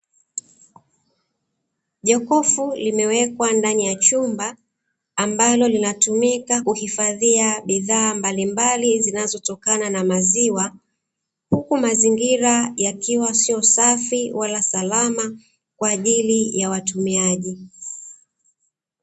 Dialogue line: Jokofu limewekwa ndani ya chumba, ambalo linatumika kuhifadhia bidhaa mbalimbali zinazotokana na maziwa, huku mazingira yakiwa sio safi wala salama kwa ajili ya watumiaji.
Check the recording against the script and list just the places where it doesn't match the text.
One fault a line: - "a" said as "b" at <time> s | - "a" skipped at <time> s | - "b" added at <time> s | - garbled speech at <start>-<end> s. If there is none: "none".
none